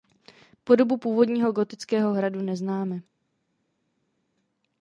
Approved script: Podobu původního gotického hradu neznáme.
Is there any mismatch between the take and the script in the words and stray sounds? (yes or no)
no